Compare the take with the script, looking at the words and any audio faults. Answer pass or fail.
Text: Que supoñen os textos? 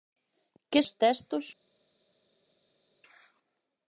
fail